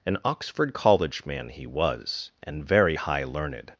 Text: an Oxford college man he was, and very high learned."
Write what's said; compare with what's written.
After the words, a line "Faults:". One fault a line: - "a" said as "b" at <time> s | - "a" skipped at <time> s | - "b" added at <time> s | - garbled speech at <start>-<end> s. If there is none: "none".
an Oxford college man he was, and very high learned."
Faults:
none